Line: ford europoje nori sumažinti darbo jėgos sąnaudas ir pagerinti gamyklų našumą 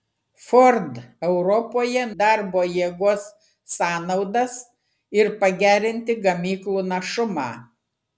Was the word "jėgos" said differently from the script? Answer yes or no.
no